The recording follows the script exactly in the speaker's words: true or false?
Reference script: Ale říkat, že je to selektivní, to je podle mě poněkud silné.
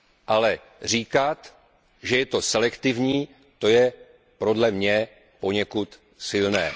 true